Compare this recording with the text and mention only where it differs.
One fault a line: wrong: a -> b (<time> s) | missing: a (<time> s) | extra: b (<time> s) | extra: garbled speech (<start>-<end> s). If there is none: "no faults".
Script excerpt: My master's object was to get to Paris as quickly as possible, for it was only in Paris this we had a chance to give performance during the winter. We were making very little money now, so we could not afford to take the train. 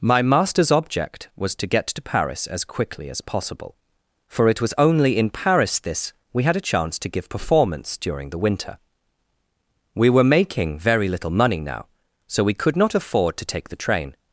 no faults